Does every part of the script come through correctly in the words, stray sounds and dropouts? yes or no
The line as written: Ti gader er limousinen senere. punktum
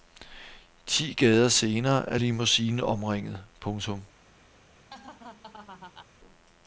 no